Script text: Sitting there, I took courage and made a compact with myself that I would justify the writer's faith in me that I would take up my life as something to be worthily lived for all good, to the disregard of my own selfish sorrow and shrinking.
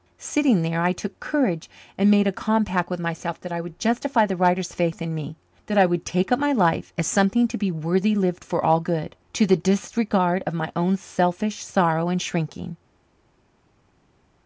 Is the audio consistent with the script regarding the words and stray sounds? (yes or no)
yes